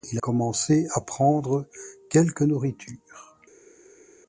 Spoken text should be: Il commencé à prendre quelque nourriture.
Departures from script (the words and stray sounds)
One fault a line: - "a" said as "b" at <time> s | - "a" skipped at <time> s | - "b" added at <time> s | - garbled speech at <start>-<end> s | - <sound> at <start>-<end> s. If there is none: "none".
none